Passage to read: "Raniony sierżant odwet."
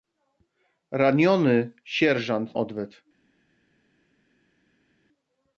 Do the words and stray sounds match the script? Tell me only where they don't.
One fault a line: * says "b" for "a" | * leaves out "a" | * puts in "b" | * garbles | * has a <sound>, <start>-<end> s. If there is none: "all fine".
all fine